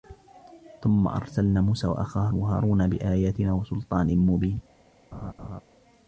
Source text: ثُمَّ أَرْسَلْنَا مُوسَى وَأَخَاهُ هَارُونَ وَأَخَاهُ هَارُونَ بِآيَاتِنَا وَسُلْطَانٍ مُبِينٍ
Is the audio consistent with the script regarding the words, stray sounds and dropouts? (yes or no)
no